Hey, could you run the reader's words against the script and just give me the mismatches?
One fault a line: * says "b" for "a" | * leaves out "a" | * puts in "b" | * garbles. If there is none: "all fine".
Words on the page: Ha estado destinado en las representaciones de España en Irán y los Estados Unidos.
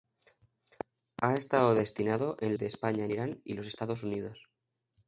* leaves out "las representaciones"